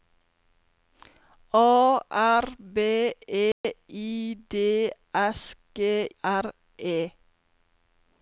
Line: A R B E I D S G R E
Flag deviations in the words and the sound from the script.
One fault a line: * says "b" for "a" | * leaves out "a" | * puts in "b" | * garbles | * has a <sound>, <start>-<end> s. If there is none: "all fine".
* has a dropout, 3.5-3.6 s